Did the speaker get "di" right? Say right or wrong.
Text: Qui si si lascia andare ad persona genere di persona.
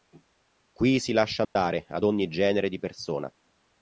right